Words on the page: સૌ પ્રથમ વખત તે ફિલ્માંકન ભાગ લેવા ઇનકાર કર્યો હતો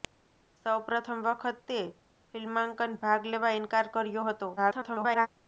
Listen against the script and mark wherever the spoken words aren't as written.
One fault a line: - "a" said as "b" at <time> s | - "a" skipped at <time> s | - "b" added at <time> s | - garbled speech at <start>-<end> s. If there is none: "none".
- garbled speech at 4.6-5.3 s